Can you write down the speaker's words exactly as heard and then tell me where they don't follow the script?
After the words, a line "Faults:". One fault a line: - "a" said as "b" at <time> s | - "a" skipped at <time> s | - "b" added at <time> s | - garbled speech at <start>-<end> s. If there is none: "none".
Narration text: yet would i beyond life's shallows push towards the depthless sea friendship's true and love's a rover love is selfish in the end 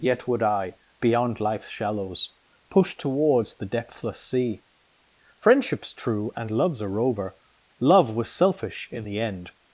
yet would i beyond life's shallows push towards the depthless sea friendship's true and love's a rover love was selfish in the end
Faults:
- "is" said as "was" at 8.2 s